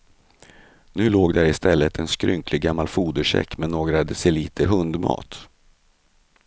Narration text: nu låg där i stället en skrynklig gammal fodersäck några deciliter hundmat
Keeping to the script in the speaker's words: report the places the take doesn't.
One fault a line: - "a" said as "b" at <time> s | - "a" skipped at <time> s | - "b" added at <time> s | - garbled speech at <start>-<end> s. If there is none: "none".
- "med" added at 3.6 s